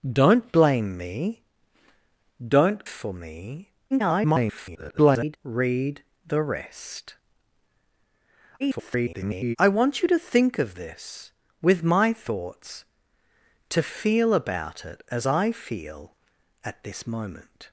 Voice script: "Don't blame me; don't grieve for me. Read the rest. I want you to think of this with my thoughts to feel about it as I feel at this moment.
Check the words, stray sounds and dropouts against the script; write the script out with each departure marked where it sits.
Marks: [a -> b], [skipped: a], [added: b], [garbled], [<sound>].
"Don't blame me; don't [skipped: grieve] for me. [garbled] Read the rest. [garbled] I want you to think of this with my thoughts to feel about it as I feel at this moment.